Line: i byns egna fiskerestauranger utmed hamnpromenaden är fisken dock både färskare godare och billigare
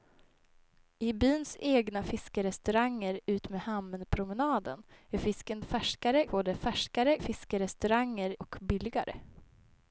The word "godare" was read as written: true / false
false